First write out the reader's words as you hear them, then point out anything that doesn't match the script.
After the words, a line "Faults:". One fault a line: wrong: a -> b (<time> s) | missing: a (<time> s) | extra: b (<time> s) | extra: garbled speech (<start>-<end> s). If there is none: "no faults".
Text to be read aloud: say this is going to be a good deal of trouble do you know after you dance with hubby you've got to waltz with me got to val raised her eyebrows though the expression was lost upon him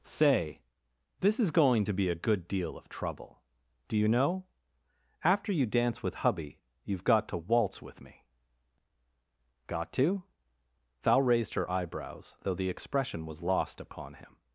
say this is going to be a good deal of trouble do you know after you dance with hubby you've got to waltz with me got to val raised her eyebrows though the expression was lost upon him
Faults:
no faults